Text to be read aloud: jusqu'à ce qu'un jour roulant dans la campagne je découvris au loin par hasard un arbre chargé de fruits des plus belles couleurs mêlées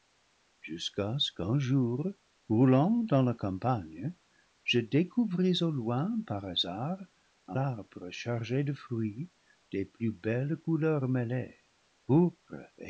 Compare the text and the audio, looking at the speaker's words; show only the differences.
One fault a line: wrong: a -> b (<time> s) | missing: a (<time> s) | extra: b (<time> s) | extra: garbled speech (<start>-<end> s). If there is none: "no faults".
no faults